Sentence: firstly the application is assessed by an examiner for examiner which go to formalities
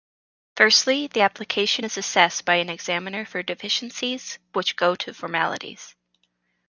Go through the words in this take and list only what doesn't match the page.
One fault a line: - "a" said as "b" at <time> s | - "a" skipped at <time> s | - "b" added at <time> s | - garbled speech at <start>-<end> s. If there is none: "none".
- "examiner" said as "deficiencies" at 3.4 s